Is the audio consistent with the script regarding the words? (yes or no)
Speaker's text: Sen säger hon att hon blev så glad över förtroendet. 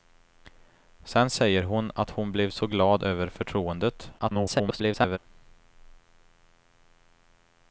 no